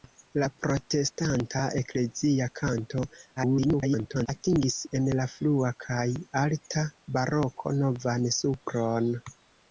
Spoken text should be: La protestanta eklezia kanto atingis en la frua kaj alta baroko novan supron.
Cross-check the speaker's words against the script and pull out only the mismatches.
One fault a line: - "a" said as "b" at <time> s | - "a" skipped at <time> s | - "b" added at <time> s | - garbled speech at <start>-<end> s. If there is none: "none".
- garbled speech at 3.4-4.3 s